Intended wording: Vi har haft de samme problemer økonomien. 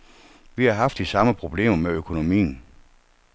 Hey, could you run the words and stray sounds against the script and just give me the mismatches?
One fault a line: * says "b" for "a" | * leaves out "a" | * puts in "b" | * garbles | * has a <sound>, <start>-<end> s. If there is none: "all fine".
* puts in "med"